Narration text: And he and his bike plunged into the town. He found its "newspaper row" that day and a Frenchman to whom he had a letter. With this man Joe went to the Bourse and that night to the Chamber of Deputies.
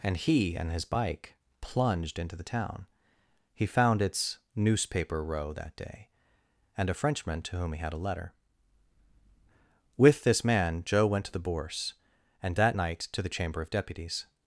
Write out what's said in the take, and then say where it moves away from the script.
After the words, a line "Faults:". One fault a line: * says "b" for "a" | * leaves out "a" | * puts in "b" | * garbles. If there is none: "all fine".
And he and his bike plunged into the town. He found its "newspaper row" that day and a Frenchman to whom he had a letter. With this man Joe went to the Bourse and that night to the Chamber of Deputies.
Faults:
all fine